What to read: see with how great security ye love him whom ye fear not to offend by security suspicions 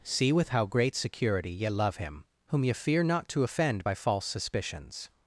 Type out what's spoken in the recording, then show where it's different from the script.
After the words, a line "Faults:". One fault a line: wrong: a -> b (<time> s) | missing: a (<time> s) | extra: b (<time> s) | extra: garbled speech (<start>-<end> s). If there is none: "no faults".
see with how great security ye love him whom ye fear not to offend by false suspicions
Faults:
wrong: security -> false (3.9 s)